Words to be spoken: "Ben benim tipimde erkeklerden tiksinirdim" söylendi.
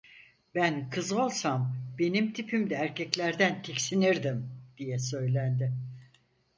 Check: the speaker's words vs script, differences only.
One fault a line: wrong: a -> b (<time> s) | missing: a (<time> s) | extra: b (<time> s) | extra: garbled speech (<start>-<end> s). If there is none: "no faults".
extra: kız olsam (0.9 s)
extra: diye (4.8 s)